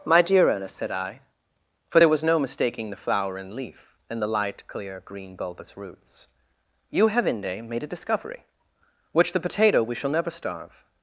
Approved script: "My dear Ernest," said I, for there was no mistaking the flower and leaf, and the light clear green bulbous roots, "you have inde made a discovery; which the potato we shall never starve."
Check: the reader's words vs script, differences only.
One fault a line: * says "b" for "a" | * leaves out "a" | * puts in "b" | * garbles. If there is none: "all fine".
all fine